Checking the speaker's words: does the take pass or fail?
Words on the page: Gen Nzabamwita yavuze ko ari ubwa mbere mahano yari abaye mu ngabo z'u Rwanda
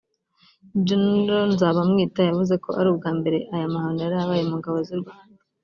fail